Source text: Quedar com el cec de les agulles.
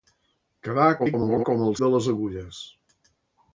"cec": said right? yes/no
no